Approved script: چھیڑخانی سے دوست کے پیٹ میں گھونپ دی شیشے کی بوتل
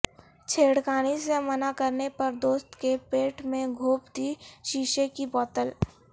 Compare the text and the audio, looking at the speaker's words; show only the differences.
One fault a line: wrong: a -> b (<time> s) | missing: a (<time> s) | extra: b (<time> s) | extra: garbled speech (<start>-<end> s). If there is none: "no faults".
extra: منع کرنے پر (1.4 s)